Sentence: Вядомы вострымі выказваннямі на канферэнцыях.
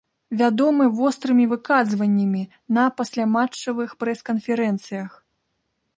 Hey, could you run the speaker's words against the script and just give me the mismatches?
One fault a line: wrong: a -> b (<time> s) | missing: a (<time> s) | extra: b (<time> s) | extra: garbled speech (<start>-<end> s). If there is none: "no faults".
extra: пасляматчавых прэс (3.0 s)